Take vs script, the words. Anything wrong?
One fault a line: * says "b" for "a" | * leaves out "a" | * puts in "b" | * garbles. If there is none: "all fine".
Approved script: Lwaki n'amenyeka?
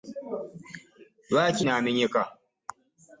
all fine